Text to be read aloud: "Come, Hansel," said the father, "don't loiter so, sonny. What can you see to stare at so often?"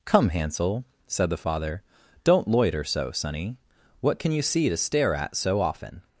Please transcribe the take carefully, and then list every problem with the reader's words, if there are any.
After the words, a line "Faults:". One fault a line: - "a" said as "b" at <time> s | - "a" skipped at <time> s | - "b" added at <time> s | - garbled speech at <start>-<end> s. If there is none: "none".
"Come, Hansel," said the father, "don't loiter so, sonny. What can you see to stare at so often?"
Faults:
none